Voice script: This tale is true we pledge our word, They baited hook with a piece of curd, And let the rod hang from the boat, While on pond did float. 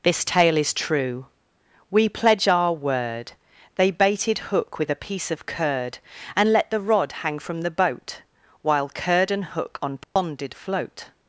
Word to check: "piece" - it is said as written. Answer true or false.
true